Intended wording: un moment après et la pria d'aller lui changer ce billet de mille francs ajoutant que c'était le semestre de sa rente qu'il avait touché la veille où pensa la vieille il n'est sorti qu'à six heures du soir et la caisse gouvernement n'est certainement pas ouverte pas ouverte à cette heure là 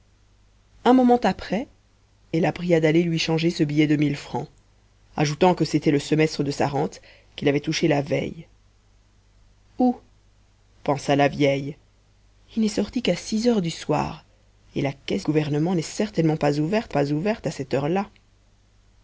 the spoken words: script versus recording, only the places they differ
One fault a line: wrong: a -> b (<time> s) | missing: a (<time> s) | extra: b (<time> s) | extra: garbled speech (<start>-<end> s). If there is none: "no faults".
no faults